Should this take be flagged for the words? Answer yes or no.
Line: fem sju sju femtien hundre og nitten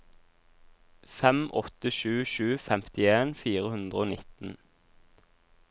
yes